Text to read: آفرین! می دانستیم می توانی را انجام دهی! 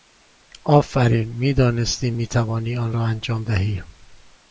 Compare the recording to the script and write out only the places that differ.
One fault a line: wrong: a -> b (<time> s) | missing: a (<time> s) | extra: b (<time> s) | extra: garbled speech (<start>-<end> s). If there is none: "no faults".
extra: آن (2.8 s)